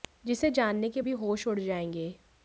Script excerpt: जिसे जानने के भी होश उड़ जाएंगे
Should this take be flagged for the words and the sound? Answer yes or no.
no